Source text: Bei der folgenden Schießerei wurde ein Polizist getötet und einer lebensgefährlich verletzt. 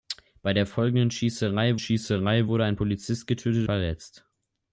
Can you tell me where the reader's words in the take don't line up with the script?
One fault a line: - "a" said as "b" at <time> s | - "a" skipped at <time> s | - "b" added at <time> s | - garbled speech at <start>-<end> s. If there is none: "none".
- "Schießerei" added at 1.8 s
- "und einer lebensgefährlich" skipped at 3.7 s